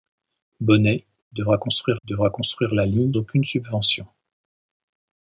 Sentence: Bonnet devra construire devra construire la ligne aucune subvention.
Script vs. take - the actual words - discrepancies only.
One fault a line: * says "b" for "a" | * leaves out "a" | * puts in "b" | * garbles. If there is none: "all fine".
all fine